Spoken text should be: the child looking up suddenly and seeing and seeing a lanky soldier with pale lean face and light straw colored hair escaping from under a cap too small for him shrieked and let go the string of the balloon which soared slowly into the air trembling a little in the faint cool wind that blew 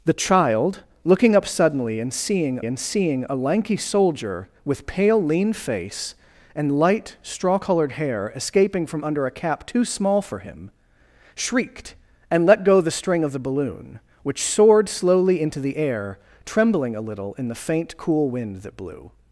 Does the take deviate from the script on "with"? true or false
false